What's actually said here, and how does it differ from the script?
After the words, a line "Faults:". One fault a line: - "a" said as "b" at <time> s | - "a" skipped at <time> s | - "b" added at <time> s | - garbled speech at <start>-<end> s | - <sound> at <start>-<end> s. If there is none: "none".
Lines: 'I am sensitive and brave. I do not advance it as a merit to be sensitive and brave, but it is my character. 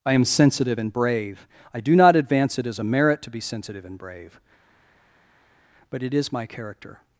'I am sensitive and brave. I do not advance it as a merit to be sensitive and brave, but it is my character.
Faults:
none